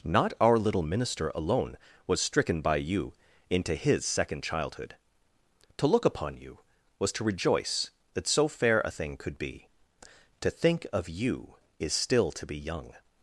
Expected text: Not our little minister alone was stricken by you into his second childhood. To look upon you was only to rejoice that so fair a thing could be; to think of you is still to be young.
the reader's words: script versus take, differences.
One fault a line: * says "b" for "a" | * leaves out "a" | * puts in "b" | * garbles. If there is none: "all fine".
* leaves out "only"